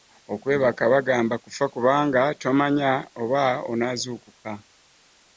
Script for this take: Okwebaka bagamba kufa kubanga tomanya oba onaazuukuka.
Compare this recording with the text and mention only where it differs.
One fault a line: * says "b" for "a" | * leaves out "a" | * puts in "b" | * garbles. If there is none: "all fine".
all fine